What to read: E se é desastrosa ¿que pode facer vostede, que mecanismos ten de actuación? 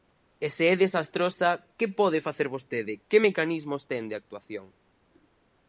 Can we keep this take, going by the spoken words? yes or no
yes